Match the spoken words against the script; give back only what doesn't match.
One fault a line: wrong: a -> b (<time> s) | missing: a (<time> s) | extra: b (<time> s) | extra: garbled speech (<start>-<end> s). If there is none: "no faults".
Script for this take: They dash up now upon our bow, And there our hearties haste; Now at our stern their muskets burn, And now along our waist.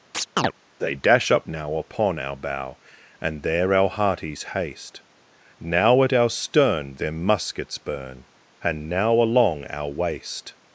no faults